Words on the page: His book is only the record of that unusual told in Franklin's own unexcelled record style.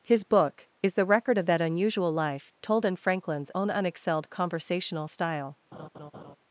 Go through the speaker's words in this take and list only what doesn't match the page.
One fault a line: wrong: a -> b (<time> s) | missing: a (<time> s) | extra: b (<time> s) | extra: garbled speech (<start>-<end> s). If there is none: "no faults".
missing: only (0.9 s)
extra: life (2.1 s)
wrong: record -> conversational (4.3 s)